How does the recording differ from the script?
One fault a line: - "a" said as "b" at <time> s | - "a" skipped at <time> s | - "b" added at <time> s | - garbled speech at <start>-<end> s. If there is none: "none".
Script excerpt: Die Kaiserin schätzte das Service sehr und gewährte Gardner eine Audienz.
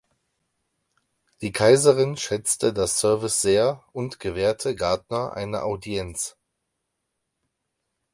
none